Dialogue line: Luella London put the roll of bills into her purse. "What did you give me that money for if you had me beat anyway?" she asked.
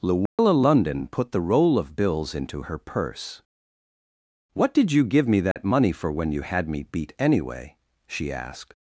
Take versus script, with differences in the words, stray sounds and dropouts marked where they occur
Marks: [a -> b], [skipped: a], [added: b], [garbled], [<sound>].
Luella [dropout] London put the roll of bills into her purse. "What did you give me that [dropout] money for [if -> when] you had me beat anyway?" she asked.